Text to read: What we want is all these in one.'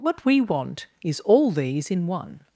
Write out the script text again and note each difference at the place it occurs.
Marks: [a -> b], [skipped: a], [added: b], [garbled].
What we want is all these in one.'